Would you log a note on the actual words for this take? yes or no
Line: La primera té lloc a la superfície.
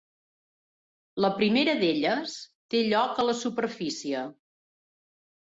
yes